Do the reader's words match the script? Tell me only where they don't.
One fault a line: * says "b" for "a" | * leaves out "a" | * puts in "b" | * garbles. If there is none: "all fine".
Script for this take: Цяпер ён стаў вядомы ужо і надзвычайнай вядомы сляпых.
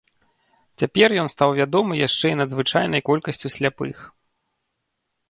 * says "яшчэ" for "ужо"
* says "колькасцю" for "вядомы"